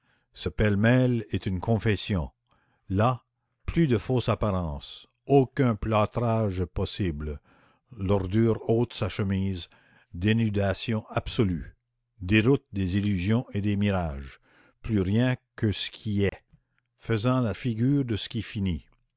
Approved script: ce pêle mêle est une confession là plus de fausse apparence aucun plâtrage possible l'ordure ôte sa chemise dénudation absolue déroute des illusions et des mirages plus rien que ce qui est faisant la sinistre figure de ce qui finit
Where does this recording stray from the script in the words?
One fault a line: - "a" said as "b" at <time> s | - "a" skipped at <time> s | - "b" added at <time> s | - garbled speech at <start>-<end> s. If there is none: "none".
- "sinistre" skipped at 17.5 s